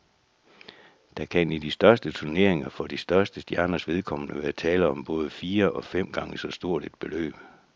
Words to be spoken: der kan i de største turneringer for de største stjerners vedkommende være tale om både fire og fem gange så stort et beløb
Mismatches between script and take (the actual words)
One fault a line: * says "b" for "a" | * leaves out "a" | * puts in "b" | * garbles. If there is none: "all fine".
all fine